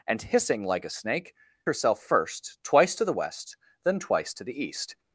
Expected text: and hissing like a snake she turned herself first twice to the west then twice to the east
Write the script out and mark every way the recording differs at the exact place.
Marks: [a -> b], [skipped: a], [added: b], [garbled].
and hissing like a snake [skipped: she turned] herself first twice to the west then twice to the east